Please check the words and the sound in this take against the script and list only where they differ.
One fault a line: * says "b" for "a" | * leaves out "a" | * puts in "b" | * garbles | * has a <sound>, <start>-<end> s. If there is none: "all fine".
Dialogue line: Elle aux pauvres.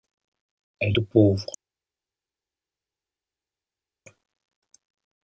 all fine